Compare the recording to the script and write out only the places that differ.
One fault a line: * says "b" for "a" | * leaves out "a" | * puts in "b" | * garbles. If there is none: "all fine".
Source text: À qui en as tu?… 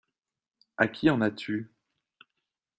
all fine